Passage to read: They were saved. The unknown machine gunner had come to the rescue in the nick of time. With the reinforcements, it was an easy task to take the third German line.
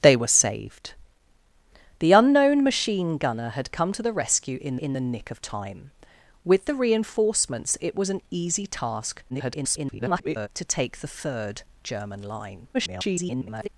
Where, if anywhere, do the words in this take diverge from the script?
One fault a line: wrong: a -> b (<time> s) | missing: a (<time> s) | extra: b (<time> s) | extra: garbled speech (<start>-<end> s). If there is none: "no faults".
extra: in (4.8 s)
extra: garbled speech (9.3-10.5 s)
extra: garbled speech (12.7-13.7 s)